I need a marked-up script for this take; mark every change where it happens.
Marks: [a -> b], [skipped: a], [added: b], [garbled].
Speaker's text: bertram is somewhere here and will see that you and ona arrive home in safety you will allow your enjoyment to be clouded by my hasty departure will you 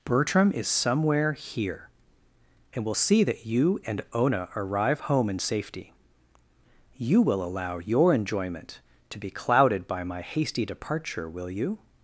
bertram is somewhere here and will see that you and ona arrive home in safety you will allow your enjoyment to be clouded by my hasty departure will you